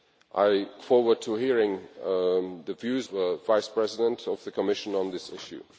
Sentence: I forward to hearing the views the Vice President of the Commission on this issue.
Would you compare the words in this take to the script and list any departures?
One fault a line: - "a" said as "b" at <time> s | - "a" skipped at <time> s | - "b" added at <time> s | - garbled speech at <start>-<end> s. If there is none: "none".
none